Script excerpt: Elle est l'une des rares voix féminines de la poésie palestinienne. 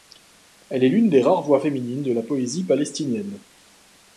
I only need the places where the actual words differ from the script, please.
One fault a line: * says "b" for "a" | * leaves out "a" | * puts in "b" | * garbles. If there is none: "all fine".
all fine